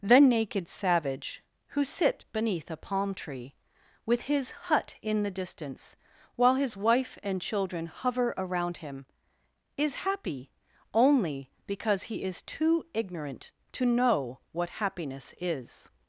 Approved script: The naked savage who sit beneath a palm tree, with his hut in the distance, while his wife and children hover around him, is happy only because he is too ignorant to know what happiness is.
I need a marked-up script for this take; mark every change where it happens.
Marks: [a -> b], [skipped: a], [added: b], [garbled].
The naked savage who sit beneath a palm tree, with his hut in the distance, while his wife and children hover around him, is happy only because he is too ignorant to know what happiness is.